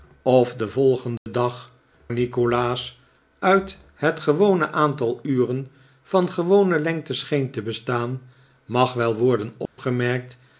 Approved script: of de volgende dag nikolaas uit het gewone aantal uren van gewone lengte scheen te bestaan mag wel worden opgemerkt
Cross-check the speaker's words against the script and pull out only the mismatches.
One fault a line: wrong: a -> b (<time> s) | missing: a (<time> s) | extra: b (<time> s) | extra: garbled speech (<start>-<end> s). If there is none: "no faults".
no faults